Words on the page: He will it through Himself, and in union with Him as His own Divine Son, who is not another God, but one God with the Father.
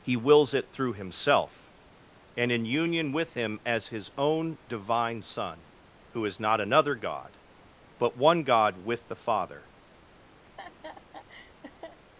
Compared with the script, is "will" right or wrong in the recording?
wrong